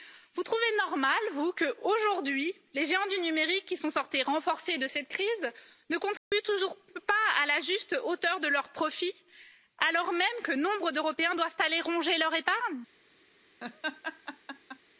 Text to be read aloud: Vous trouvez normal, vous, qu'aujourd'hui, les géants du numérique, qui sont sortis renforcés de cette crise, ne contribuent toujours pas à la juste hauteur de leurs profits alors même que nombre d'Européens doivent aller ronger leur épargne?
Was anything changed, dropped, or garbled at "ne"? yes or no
no